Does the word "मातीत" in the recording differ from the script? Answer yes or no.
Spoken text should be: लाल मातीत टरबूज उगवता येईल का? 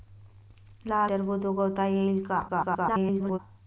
yes